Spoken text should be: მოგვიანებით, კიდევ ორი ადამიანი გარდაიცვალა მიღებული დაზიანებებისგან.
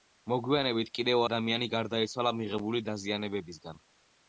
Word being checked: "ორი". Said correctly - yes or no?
no